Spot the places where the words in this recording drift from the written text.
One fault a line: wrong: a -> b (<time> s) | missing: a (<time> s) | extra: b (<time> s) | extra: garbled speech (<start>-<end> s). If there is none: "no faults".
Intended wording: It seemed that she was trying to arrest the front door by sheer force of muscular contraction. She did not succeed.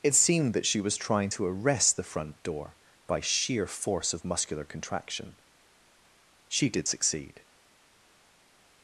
missing: not (6.9 s)